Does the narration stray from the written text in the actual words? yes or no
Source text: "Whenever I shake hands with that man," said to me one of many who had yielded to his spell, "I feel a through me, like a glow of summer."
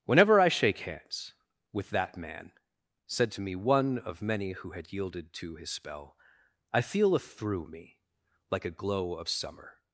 no